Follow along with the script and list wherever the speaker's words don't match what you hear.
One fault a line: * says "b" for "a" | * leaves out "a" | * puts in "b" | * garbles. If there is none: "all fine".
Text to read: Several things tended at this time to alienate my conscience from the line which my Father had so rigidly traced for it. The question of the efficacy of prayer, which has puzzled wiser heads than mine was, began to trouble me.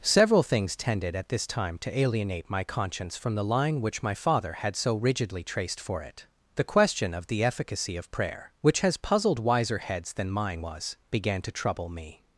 all fine